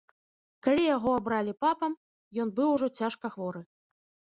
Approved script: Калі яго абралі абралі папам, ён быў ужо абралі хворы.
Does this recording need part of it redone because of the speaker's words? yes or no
yes